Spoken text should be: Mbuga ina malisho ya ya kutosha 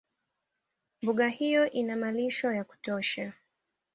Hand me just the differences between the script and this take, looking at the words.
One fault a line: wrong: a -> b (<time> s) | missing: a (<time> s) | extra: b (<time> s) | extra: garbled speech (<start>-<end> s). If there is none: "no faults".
extra: hiyo (1.3 s)
missing: ya (2.6 s)